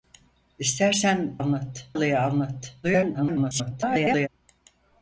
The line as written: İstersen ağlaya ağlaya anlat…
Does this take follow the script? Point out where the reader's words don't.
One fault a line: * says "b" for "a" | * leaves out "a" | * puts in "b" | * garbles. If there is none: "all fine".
* says "anlat" for "ağlaya"
* garbles